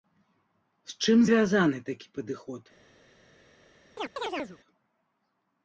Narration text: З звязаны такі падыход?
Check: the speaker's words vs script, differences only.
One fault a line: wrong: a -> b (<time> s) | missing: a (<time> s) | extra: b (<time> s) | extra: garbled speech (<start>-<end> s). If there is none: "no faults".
extra: чым (1.0 s)